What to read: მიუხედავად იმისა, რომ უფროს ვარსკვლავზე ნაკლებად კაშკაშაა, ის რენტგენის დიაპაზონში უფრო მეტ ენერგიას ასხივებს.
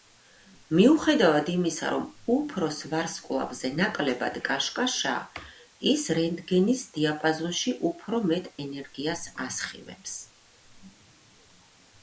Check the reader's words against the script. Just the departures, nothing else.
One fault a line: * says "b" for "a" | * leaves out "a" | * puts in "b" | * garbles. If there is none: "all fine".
all fine